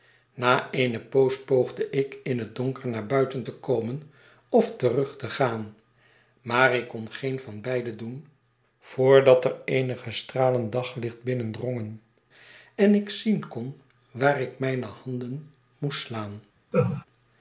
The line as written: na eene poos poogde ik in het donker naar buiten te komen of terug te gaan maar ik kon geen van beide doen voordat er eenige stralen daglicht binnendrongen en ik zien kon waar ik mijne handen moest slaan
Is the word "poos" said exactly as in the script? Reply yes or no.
yes